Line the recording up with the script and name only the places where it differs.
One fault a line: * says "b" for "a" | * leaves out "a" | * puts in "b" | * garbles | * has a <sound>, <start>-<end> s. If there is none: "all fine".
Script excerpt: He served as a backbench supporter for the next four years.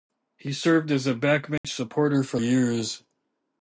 * has a dropout, 1.6-1.6 s
* leaves out "the next four"